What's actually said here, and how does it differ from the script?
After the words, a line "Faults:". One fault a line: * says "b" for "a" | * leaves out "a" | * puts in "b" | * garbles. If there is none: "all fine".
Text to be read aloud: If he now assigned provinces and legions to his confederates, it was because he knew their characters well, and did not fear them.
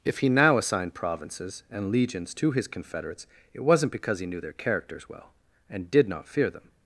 If he now assigned provinces and legions to his confederates, it wasn't because he knew their characters well, and did not fear them.
Faults:
* says "wasn't" for "was"